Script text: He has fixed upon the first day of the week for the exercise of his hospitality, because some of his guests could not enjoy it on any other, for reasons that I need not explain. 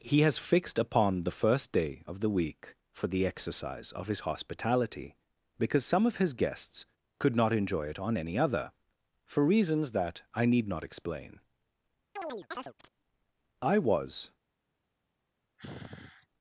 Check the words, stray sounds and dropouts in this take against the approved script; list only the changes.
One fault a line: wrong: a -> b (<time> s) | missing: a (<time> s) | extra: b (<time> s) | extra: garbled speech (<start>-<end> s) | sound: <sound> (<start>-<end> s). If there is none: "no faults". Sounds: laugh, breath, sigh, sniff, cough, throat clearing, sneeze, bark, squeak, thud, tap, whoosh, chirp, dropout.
sound: chirp (12.2-12.9 s)
extra: I was (13.6 s)
sound: sigh (15.6-16.3 s)